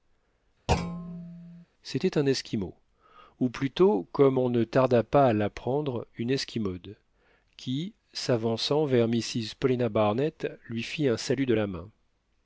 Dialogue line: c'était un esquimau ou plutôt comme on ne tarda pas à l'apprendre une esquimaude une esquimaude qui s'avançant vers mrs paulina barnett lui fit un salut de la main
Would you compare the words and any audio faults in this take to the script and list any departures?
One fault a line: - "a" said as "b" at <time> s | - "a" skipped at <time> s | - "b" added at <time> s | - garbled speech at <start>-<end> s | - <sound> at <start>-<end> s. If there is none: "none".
- thud at 0.7-1.7 s
- "une esquimaude" skipped at 6.9 s